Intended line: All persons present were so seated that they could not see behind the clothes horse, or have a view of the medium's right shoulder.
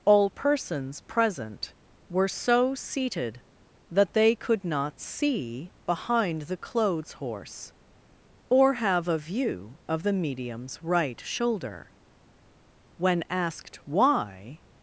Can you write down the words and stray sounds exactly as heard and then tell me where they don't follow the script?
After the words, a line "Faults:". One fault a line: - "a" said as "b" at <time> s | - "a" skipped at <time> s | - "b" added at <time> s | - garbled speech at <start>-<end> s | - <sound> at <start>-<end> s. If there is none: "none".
All persons present were so seated that they could not see behind the clothes horse, or have a view of the medium's right shoulder. When asked why
Faults:
- "When asked why" added at 13.0 s